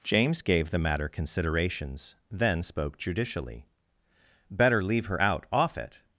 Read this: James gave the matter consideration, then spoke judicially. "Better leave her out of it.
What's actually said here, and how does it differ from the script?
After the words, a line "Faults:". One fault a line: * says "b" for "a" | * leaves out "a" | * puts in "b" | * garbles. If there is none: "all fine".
James gave the matter considerations, then spoke judicially. "Better leave her out off it.
Faults:
* says "considerations" for "consideration"
* says "off" for "of"